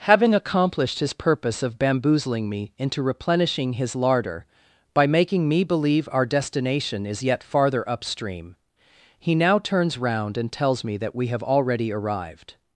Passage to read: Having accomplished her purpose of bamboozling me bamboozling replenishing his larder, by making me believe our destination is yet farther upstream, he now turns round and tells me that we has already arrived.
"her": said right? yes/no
no